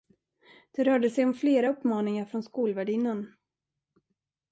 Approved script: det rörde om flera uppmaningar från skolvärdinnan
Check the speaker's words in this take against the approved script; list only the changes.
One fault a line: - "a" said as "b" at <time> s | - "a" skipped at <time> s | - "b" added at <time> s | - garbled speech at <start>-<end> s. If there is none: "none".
- "sig" added at 1.1 s